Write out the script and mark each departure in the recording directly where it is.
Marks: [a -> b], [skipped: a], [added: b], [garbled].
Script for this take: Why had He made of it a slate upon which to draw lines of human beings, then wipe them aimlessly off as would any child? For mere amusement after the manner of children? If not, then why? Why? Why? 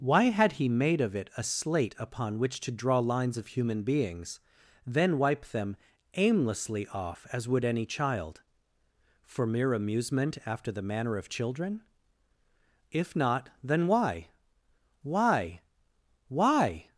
Why had He made of it a slate upon which to draw lines of human beings, then wipe them aimlessly off as would any child? For mere amusement after the manner of children? If not, then why? Why? Why?